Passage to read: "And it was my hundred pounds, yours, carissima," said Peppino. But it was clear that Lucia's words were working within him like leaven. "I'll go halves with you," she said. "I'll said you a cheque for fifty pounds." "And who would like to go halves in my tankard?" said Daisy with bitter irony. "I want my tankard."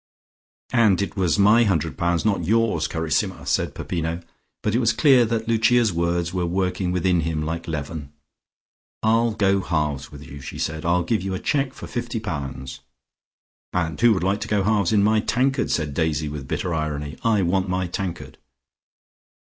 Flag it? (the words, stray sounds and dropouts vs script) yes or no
yes